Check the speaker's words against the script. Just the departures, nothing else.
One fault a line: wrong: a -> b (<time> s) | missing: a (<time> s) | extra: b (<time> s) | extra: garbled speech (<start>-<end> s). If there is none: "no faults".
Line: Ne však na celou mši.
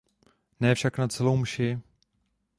no faults